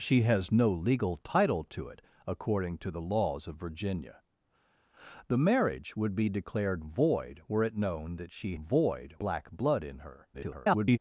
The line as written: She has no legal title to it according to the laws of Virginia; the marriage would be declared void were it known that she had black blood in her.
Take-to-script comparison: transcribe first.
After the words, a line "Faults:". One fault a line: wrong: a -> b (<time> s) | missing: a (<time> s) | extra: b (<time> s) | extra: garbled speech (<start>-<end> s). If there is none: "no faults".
She has no legal title to it according to the laws of Virginia; the marriage would be declared void were it known that she void black blood in her. [garbled]
Faults:
wrong: had -> void (8.6 s)
extra: garbled speech (10.3-11.0 s)